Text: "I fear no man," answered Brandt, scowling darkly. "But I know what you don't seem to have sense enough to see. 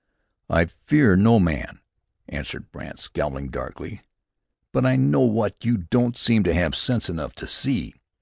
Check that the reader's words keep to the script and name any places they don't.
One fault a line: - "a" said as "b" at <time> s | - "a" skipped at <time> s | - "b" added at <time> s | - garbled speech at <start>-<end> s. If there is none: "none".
none